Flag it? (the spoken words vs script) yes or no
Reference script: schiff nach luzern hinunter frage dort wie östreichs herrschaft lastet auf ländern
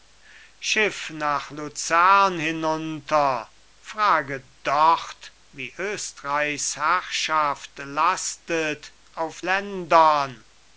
no